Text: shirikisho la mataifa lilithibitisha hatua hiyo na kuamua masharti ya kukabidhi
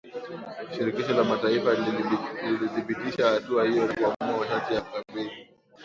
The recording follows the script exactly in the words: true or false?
true